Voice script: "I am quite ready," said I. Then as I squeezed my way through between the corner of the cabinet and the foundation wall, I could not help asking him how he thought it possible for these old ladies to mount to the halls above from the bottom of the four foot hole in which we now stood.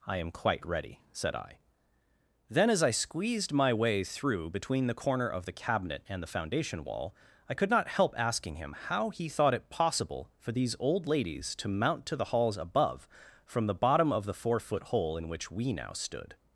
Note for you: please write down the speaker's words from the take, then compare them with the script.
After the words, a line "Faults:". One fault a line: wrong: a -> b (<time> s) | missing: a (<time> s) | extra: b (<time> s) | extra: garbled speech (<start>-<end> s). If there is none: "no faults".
"I am quite ready," said I. Then as I squeezed my way through between the corner of the cabinet and the foundation wall, I could not help asking him how he thought it possible for these old ladies to mount to the halls above from the bottom of the four foot hole in which we now stood.
Faults:
no faults